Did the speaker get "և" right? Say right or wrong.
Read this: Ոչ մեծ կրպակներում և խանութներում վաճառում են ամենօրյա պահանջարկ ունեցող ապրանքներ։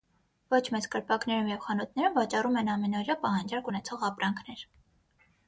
right